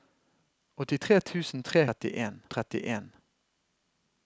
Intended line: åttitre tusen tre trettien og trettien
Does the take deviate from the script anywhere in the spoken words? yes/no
no